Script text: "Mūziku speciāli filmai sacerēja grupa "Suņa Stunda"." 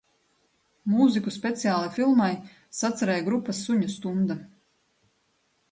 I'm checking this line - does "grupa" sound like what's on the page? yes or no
yes